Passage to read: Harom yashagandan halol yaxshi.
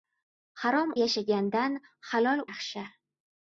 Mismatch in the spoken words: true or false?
false